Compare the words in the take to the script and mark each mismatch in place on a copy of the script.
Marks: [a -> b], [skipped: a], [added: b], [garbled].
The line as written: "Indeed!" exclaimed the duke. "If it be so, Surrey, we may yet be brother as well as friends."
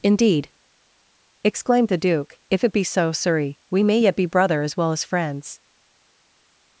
"Indeed!" exclaimed the duke. "If it be so, Surrey, we may yet be brother as well as friends."